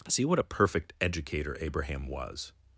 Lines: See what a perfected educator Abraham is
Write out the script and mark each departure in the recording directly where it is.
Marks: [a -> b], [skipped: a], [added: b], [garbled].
See what a [perfected -> perfect] educator Abraham [is -> was]